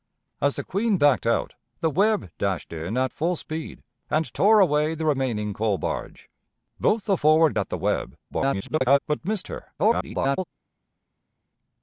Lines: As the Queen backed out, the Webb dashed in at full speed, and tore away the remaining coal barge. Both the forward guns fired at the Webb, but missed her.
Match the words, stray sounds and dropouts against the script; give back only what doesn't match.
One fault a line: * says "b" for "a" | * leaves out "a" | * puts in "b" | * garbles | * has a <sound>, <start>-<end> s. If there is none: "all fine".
* leaves out "guns fired"
* garbles
* garbles